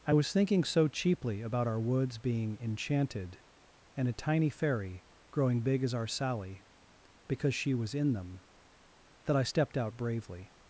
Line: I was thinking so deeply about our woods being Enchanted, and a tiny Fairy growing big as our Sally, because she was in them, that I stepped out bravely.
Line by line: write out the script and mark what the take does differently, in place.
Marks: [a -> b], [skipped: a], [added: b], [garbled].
I was thinking so [deeply -> cheaply] about our woods being Enchanted, and a tiny Fairy growing big as our Sally, because she was in them, that I stepped out bravely.